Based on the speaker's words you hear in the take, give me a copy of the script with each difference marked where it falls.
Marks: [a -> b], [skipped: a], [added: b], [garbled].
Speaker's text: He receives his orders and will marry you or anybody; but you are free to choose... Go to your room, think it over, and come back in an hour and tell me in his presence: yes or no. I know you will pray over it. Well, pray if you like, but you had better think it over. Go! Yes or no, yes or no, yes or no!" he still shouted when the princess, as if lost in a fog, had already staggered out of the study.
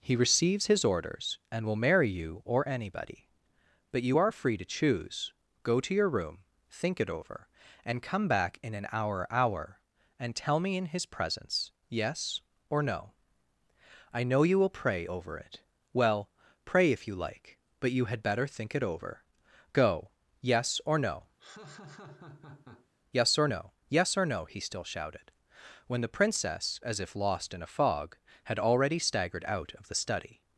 He receives his orders and will marry you or anybody; but you are free to choose... Go to your room, think it over, and come back in an hour [added: hour] and tell me in his presence: yes or no. I know you will pray over it. Well, pray if you like, but you had better think it over. Go! Yes or no, yes or no, yes or no!" he still shouted when the princess, as if lost in a fog, had already staggered out of the study.